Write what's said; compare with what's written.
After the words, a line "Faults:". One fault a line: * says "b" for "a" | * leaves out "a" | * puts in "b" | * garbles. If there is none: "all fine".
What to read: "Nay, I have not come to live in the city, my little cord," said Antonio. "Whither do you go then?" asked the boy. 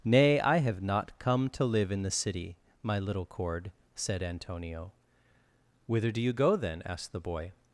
"Nay, I have not come to live in the city, my little cord," said Antonio. "Whither do you go then?" asked the boy.
Faults:
all fine